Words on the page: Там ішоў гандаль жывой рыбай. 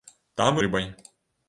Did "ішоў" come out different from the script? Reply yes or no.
yes